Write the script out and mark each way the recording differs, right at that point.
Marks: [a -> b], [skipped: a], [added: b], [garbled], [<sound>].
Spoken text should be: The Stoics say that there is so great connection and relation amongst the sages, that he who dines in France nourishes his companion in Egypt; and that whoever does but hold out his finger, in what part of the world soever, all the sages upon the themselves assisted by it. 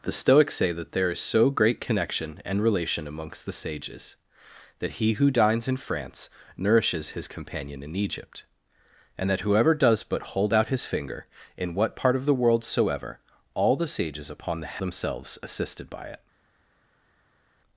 The Stoics say that there is so great connection and relation amongst the sages, that he who dines in France nourishes his companion in Egypt; and that whoever does but hold out his finger, in what part of the world soever, all the sages upon the themselves assisted by it.